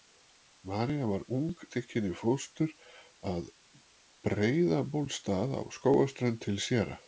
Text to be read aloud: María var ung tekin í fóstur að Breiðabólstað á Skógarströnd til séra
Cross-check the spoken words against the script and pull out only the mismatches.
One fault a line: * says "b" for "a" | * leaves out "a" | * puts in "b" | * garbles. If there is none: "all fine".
all fine